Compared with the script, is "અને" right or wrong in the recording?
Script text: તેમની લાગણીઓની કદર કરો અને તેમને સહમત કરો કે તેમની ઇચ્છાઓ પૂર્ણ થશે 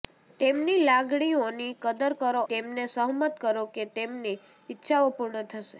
wrong